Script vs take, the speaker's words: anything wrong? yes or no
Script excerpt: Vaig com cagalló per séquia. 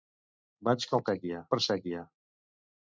yes